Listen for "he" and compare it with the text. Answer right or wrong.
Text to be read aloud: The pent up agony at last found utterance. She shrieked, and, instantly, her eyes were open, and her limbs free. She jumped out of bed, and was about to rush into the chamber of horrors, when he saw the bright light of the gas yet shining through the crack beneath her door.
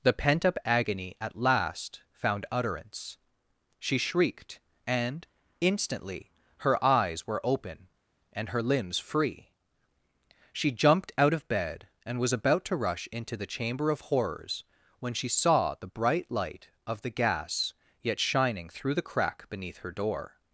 wrong